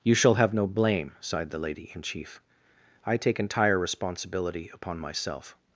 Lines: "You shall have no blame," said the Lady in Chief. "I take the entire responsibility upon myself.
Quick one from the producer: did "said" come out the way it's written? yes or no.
no